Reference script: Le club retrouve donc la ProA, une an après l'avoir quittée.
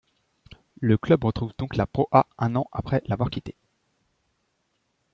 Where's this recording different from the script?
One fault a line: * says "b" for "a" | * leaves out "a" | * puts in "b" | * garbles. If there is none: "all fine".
* says "un" for "une"